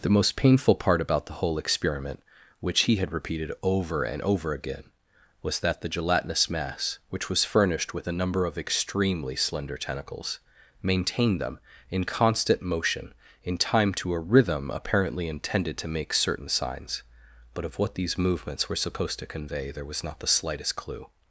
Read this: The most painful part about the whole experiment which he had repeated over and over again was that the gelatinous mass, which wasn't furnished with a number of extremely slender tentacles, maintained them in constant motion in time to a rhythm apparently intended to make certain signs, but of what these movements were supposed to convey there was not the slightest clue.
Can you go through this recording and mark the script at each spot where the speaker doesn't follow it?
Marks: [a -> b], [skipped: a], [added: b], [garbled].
The most painful part about the whole experiment which he had repeated over and over again was that the gelatinous mass, which [wasn't -> was] furnished with a number of extremely slender tentacles, maintained them in constant motion in time to a rhythm apparently intended to make certain signs, but of what these movements were supposed to convey there was not the slightest clue.